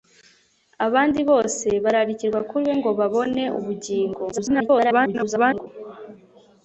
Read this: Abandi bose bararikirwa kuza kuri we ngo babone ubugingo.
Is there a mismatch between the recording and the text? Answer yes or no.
yes